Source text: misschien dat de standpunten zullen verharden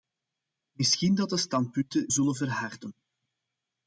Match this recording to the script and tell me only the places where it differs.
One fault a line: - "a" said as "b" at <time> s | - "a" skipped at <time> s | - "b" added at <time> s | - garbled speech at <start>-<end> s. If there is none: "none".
none